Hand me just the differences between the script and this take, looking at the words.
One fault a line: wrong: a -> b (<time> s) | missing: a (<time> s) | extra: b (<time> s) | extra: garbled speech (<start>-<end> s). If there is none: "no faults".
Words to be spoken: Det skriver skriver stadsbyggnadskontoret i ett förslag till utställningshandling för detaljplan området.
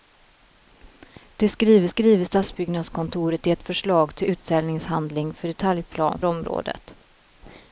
no faults